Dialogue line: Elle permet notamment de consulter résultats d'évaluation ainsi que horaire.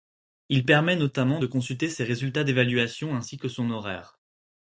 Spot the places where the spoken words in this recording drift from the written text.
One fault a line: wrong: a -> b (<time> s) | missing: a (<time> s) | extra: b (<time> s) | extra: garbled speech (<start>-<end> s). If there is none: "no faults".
wrong: Elle -> Il (0.5 s)
extra: ses (1.9 s)
extra: son (3.5 s)